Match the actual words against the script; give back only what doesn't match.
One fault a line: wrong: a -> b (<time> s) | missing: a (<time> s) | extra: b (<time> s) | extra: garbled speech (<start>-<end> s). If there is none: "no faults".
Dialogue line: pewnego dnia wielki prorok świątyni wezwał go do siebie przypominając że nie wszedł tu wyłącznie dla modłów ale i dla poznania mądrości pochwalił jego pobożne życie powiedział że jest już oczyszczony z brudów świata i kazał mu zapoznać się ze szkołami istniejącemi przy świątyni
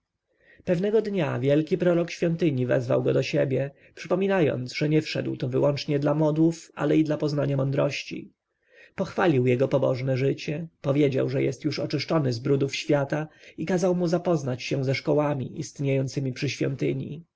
no faults